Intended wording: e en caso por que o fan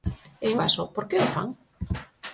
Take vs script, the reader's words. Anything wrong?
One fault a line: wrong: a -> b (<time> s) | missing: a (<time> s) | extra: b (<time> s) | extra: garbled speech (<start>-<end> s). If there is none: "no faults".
no faults